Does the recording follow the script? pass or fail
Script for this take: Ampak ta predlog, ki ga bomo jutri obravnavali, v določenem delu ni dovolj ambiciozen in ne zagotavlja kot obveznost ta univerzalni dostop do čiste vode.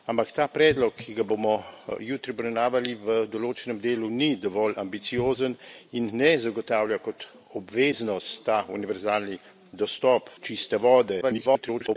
fail